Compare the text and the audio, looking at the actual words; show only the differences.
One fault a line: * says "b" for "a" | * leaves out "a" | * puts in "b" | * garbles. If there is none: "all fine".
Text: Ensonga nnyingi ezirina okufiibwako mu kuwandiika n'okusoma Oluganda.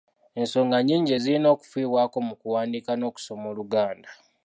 all fine